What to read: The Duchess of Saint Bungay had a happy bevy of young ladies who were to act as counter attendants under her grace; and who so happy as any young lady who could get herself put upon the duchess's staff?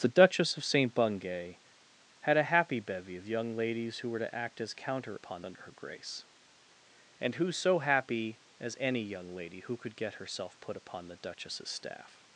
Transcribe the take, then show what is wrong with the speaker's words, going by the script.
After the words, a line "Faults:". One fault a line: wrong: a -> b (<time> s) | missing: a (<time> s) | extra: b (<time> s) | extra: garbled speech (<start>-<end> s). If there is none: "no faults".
The Duchess of Saint Bungay had a happy bevy of young ladies who were to act as counter upon under her grace; and who so happy as any young lady who could get herself put upon the duchess's staff?
Faults:
wrong: attendants -> upon (5.1 s)